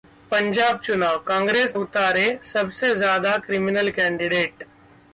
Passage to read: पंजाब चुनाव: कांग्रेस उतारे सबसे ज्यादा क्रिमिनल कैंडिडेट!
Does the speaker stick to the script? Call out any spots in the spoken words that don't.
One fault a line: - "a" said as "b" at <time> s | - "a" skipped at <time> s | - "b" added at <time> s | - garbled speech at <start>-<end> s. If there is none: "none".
none